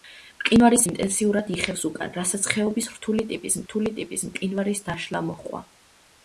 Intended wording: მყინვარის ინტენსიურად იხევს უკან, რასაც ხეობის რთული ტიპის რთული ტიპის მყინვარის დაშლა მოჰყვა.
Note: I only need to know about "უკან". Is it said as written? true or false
true